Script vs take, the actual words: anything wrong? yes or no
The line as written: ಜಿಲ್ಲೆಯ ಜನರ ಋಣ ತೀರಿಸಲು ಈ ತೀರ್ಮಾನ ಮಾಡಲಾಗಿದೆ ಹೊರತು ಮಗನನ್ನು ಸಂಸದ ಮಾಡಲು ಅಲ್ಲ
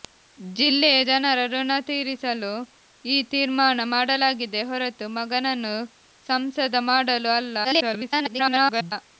yes